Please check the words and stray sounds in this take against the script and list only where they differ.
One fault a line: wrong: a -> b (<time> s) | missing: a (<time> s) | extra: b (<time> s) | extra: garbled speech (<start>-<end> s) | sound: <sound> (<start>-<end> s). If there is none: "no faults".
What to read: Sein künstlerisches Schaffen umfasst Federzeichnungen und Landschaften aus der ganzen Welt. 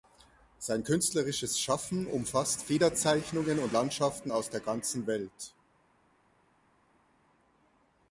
no faults